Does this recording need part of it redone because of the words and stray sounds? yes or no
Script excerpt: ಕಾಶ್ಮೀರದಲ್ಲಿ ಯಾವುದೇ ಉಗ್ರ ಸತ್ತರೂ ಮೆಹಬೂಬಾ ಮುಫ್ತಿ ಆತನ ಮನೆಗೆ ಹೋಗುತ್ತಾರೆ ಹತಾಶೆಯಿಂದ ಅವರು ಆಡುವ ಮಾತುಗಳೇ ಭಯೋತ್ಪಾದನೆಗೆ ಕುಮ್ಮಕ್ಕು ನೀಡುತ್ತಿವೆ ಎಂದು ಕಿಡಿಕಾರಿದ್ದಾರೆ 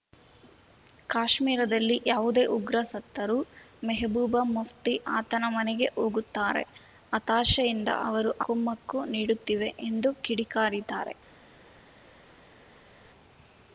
yes